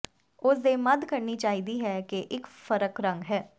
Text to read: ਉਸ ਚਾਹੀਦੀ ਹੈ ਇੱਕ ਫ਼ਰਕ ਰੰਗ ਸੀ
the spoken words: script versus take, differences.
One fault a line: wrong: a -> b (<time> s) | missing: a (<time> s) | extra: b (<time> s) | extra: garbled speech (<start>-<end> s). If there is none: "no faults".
extra: ਦੇ ਮੱਧ ਕਰਨੀ (0.6 s)
extra: ਕਿ (2.0 s)
wrong: ਸੀ -> ਹੈ (3.3 s)